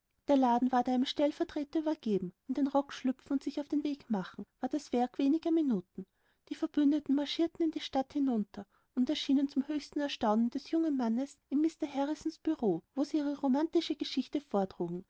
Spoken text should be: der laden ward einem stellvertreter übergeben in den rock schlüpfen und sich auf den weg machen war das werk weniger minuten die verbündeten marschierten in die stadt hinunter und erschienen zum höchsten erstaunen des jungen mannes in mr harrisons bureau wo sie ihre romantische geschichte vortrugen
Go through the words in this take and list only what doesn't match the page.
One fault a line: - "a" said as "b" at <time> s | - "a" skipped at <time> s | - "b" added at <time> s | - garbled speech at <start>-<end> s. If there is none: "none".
none